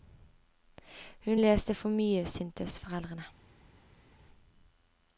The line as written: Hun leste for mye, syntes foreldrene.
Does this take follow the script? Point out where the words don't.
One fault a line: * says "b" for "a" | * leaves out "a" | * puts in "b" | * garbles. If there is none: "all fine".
all fine